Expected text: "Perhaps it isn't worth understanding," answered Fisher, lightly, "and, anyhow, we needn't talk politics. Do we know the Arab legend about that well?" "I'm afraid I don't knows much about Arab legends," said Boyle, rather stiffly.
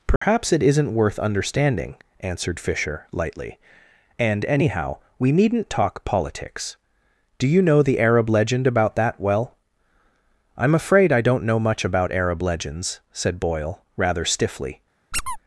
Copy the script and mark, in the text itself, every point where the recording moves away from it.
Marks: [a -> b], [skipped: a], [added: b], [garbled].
"Perhaps it isn't worth understanding," answered Fisher, lightly, "and, anyhow, we needn't talk politics. Do [we -> you] know the Arab legend about that well?" "I'm afraid I don't [knows -> know] much about Arab legends," said Boyle, rather stiffly.